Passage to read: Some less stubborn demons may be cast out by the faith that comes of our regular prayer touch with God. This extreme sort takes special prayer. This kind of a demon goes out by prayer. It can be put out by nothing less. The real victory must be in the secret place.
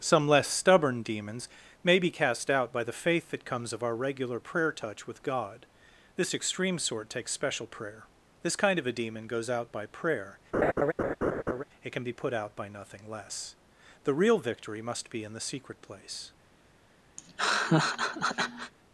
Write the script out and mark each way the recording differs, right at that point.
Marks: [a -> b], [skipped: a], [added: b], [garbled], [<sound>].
Some less stubborn demons may be cast out by the faith that comes of our regular prayer touch with God. This extreme sort takes special prayer. This kind of a demon goes out by prayer. [laugh] It can be put out by nothing less. The real victory must be in the secret place. [laugh]